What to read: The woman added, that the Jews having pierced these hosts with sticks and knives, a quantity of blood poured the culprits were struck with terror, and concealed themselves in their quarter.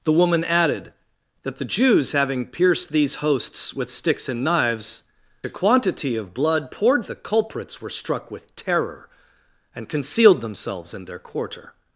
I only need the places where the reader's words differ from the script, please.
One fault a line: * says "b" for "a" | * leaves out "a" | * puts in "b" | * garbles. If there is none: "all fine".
all fine